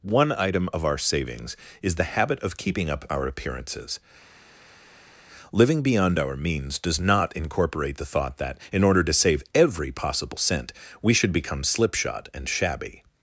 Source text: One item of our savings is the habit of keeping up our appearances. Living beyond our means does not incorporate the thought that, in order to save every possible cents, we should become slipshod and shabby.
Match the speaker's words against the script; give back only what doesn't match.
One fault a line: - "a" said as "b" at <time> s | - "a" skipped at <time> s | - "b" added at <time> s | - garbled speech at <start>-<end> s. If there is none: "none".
- "cents" said as "cent" at 10.4 s